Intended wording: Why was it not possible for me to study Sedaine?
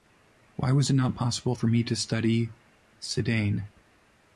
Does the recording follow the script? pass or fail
pass